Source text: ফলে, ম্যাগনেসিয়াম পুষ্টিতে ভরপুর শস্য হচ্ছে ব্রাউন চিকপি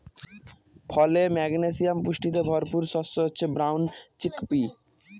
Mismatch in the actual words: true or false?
false